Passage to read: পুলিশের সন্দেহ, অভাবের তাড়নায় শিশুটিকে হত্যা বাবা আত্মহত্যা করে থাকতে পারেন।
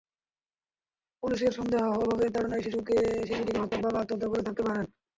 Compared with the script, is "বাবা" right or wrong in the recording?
right